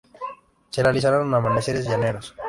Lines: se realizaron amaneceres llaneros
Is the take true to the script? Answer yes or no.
yes